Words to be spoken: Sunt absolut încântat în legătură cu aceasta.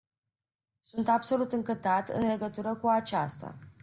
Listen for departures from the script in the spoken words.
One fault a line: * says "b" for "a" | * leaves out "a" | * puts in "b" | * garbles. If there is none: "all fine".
all fine